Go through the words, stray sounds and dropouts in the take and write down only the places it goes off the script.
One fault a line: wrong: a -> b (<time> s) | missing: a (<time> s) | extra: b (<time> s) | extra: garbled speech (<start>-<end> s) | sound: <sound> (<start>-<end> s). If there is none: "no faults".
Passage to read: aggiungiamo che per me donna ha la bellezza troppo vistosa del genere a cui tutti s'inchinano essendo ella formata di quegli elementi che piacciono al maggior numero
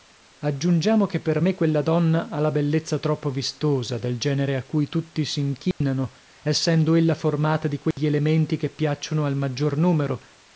extra: quella (1.5 s)
sound: dropout (5.7-5.8 s)
sound: dropout (7.9-8.0 s)